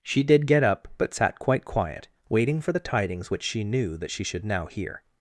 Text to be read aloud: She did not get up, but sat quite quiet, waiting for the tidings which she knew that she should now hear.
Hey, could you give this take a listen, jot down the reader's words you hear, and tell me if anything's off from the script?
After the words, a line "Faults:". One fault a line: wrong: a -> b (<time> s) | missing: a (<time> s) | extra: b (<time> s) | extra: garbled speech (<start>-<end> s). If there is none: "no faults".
She did get up, but sat quite quiet, waiting for the tidings which she knew that she should now hear.
Faults:
missing: not (0.5 s)